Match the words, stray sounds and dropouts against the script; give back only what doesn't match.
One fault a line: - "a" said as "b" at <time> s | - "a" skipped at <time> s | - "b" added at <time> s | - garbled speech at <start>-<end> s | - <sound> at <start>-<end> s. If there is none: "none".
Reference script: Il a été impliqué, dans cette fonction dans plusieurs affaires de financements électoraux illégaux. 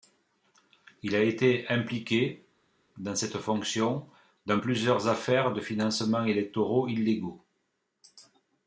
none